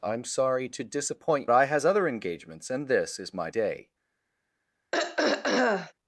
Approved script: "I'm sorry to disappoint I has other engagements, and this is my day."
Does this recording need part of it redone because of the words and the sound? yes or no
yes